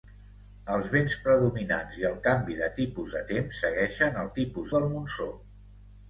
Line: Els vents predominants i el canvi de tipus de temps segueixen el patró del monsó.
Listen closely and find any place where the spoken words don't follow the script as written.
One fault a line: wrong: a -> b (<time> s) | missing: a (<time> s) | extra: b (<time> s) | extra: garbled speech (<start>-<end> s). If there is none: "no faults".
wrong: patró -> tipus (4.4 s)